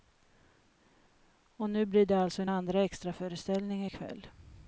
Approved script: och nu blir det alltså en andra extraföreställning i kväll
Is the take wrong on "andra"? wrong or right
right